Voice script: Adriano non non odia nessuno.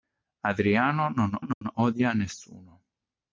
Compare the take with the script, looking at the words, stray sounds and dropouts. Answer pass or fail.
fail